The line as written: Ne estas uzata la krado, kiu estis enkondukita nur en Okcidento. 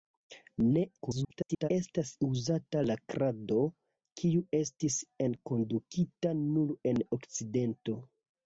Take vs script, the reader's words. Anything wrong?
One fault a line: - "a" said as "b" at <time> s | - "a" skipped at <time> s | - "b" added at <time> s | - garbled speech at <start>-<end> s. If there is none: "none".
- garbled speech at 1.0-1.7 s